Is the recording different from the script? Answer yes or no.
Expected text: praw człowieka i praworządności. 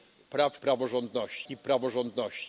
yes